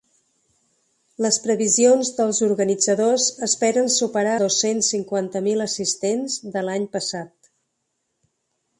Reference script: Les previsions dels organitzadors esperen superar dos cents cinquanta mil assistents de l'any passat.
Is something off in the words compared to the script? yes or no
no